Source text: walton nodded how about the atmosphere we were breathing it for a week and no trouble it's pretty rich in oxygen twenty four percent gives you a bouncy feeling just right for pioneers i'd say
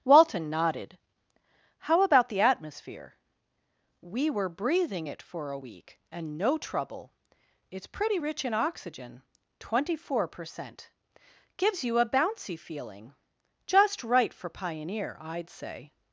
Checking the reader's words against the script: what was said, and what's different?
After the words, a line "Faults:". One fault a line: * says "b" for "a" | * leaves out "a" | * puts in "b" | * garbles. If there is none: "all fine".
walton nodded how about the atmosphere we were breathing it for a week and no trouble it's pretty rich in oxygen twenty four percent gives you a bouncy feeling just right for pioneer i'd say
Faults:
* says "pioneer" for "pioneers"